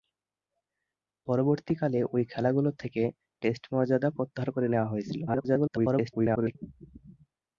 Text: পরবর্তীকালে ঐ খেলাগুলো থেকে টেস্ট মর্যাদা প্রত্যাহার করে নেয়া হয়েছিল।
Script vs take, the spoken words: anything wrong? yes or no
yes